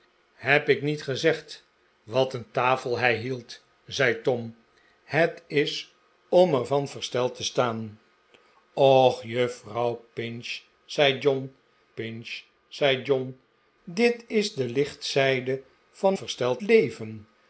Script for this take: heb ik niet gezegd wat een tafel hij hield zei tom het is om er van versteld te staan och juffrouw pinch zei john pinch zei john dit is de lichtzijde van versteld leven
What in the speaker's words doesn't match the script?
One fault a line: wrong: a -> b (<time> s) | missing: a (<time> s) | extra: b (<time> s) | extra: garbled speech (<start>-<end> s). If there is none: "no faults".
no faults